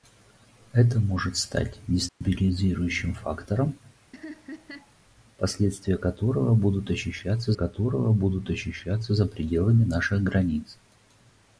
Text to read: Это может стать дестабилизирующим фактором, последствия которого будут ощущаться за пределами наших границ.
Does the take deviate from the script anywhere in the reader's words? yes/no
yes